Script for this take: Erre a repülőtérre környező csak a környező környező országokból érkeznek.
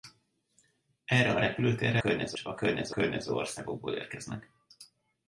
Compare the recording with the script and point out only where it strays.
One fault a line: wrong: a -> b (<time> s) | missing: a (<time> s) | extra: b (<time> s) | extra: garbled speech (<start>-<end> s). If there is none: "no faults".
no faults